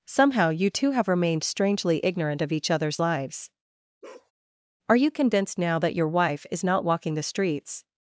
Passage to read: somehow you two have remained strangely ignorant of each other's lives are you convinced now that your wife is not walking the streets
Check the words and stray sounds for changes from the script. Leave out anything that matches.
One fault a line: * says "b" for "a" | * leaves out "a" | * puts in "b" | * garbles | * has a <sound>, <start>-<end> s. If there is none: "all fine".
* has a bark, 4.0-4.3 s